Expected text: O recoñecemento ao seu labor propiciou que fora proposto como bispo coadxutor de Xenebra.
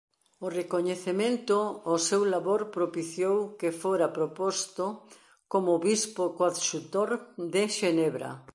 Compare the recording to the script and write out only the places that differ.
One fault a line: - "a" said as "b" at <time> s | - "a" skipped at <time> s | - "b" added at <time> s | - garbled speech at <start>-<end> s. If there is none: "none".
none